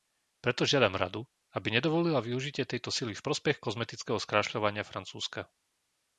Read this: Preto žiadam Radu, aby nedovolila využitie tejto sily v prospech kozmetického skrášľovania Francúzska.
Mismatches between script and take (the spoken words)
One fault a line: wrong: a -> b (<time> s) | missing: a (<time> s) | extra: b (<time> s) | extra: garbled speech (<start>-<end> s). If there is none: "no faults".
no faults